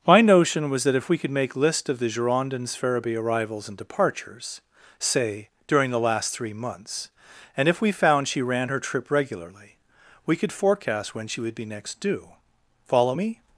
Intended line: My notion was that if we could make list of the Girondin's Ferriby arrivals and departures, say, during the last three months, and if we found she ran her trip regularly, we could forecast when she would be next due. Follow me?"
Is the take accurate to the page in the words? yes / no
yes